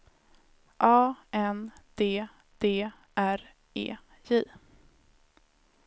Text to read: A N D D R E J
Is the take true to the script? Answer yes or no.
yes